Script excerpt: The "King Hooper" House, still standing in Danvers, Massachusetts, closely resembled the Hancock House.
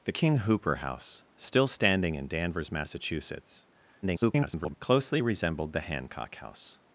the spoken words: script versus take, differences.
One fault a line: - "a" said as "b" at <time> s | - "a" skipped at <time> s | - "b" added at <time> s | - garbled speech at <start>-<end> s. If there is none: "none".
- garbled speech at 4.0-4.7 s